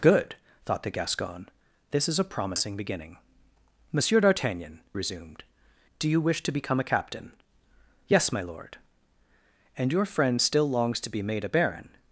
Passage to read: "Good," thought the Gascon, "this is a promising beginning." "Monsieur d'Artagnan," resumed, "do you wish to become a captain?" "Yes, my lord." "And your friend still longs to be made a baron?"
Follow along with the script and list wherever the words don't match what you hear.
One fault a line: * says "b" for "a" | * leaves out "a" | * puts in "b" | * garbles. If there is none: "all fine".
all fine